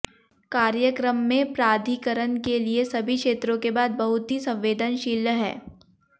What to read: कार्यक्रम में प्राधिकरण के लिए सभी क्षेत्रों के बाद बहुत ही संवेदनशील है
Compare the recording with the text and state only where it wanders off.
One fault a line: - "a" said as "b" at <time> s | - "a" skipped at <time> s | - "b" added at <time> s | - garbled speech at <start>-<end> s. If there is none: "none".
none